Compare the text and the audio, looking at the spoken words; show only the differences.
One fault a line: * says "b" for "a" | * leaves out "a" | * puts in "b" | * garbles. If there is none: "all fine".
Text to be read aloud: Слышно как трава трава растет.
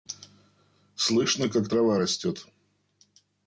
* leaves out "трава"